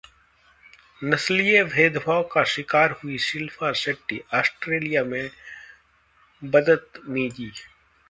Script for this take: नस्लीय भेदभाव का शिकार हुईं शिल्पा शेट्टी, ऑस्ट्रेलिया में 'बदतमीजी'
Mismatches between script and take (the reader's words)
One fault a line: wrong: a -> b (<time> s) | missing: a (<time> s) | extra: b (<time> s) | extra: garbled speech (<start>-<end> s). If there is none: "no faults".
no faults